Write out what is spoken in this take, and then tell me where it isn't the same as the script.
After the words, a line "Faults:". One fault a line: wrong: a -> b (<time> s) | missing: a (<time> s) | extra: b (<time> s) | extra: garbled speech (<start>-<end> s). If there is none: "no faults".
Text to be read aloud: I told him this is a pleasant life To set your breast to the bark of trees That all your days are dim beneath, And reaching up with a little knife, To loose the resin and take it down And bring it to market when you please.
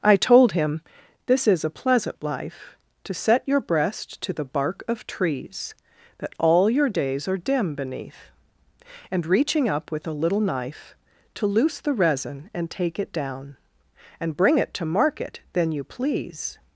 I told him this is a pleasant life To set your breast to the bark of trees That all your days are dim beneath, And reaching up with a little knife, To loose the resin and take it down And bring it to market then you please.
Faults:
wrong: when -> then (15.5 s)